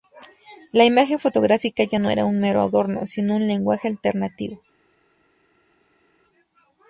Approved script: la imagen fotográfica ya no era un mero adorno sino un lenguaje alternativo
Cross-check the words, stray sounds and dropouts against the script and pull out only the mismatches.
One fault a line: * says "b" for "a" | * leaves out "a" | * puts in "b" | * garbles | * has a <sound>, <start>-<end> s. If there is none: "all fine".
all fine